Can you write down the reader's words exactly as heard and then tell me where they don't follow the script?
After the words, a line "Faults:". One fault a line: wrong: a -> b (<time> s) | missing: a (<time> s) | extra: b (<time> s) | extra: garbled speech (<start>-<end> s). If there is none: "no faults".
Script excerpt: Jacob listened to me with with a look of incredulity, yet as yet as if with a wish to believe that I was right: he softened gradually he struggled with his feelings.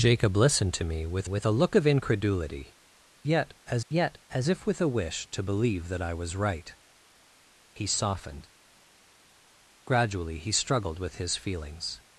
Jacob listened to me with with a look of incredulity, yet as yet as if with a wish to believe that I was right: he softened gradually he struggled with his feelings.
Faults:
no faults